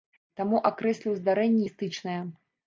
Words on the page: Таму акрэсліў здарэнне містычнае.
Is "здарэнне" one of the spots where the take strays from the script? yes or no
no